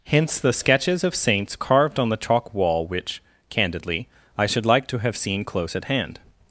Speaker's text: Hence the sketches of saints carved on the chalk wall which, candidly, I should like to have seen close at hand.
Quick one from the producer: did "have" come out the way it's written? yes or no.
yes